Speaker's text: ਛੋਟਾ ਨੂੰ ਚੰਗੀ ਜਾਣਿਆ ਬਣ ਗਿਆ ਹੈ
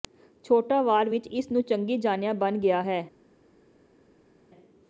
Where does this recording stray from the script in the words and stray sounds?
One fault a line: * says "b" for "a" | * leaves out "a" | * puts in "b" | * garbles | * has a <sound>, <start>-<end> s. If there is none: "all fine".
* puts in "ਵਾਰ ਵਿਚ ਇਸ"